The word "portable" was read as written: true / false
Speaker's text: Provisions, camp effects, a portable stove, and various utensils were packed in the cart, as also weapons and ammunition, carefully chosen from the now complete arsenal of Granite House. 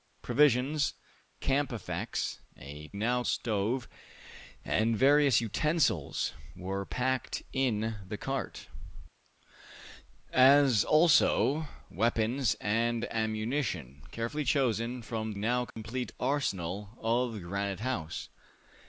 false